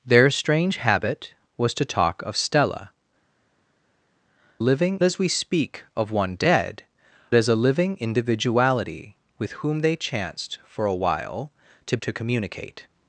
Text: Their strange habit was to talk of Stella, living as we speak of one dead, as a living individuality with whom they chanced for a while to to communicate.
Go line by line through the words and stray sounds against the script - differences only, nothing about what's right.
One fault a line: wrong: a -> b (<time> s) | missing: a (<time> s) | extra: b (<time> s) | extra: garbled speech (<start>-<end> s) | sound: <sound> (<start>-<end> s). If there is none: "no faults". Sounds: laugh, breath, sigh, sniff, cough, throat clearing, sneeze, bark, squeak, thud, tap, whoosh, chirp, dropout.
no faults